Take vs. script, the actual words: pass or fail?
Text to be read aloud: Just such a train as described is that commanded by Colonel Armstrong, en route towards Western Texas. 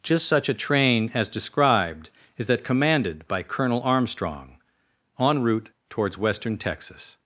pass